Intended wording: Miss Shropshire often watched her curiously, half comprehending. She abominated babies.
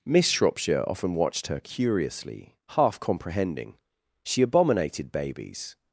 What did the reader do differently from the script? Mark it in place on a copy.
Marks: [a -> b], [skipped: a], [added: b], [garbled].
Miss Shropshire often watched her curiously, half comprehending. She abominated babies.